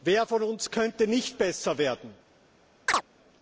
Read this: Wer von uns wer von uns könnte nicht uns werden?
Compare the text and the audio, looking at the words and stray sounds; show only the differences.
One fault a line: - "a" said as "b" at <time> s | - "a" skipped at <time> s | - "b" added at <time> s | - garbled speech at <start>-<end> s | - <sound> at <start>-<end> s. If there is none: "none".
- "wer von uns" skipped at 0.7 s
- "uns" said as "besser" at 1.4 s
- chirp at 2.9-3.0 s